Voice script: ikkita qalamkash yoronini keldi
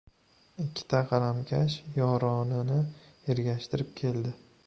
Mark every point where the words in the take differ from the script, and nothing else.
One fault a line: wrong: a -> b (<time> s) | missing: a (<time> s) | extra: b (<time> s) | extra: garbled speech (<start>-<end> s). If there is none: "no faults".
extra: ergashtirib (3.3 s)